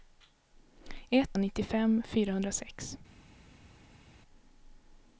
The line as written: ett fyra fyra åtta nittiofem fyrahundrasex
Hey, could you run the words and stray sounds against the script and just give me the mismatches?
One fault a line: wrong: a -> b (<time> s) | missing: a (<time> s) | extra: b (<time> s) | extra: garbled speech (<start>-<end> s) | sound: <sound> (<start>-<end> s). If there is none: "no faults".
missing: fyra fyra åtta (1.4 s)